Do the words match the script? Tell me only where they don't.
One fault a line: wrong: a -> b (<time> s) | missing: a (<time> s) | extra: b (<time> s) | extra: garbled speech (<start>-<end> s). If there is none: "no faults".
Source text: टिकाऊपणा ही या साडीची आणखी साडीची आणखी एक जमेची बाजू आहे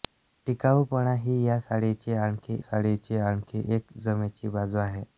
no faults